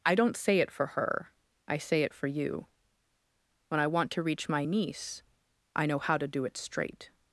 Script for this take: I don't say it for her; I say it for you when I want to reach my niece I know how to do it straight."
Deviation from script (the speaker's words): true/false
false